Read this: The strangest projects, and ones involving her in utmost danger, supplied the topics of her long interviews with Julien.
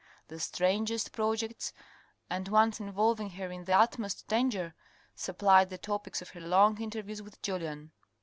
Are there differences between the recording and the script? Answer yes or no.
yes